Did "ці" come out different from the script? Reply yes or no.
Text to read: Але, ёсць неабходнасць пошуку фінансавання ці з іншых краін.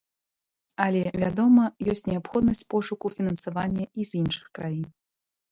yes